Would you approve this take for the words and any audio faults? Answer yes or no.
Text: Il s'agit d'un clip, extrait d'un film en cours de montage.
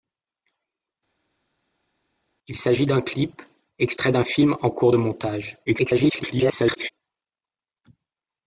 no